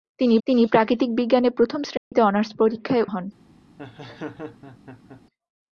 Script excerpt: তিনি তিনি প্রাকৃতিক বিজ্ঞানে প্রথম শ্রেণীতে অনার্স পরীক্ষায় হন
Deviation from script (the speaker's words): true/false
false